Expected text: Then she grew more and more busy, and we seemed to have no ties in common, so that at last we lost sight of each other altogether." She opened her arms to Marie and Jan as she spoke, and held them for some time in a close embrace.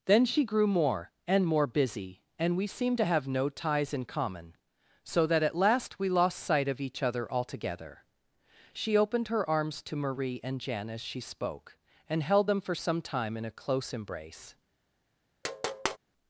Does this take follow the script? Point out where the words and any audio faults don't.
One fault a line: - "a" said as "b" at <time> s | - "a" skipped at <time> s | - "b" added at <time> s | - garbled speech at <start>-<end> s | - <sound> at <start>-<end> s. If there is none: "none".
- tap at 15.4-16.0 s